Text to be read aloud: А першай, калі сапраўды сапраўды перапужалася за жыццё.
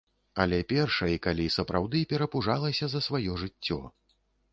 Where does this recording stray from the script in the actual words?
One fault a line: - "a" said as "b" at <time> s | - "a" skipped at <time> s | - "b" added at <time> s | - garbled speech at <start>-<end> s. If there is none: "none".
- "А" said as "Але" at 0.4 s
- "сапраўды" skipped at 2.0 s
- "сваё" added at 3.1 s